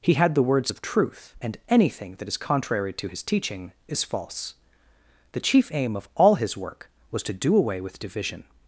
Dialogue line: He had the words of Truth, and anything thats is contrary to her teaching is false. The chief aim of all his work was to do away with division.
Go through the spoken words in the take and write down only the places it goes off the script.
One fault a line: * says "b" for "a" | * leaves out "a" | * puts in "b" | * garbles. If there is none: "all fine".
* says "that" for "thats"
* says "his" for "her"